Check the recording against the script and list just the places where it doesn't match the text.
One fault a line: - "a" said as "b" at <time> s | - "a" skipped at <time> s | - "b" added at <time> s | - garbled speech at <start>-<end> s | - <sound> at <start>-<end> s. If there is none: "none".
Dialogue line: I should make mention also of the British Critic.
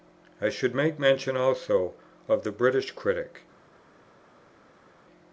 none